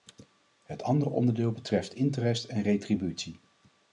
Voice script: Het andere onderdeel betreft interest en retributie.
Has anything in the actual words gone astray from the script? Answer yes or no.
no